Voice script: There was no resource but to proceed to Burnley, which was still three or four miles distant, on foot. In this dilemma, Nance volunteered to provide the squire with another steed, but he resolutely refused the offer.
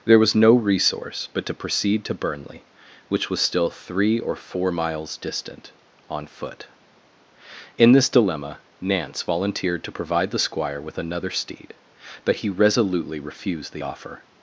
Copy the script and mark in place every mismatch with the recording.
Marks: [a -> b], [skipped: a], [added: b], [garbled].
There was no resource but to proceed to Burnley, which was still three or four miles distant, on foot. In this dilemma, Nance volunteered to provide the squire with another steed, but he resolutely refused the offer.